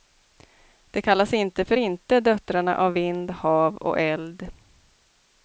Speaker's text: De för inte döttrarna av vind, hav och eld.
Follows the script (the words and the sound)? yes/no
no